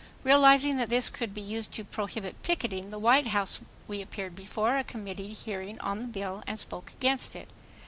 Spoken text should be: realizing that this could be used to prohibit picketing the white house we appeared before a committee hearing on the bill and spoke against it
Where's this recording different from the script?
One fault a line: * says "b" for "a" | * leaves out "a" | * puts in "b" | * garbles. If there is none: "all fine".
all fine